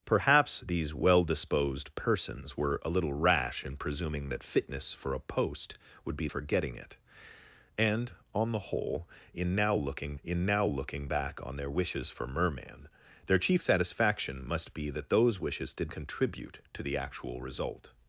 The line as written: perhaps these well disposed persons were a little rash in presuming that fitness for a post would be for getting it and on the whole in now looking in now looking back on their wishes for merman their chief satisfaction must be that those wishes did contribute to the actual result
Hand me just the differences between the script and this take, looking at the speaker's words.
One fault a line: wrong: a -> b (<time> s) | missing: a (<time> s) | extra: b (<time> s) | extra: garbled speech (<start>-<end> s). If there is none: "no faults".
no faults